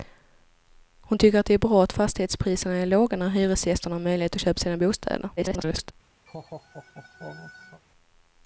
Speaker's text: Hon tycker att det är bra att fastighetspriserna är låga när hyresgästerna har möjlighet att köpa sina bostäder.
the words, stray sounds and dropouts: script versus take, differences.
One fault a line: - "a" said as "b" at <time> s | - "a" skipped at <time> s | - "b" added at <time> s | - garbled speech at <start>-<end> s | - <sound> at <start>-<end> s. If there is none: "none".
- garbled speech at 5.4-5.9 s
- laugh at 6.3-7.8 s